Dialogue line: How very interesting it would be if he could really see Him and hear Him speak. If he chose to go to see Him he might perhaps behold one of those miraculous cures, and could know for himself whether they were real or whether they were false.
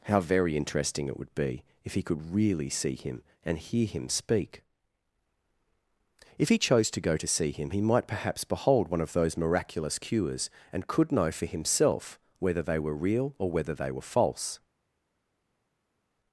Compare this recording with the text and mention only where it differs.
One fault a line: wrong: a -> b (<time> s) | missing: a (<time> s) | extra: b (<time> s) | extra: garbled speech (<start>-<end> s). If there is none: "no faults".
no faults